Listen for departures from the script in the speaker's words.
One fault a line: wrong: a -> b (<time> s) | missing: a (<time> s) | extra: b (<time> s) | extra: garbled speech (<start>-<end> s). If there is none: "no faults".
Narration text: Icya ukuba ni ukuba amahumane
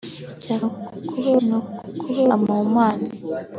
no faults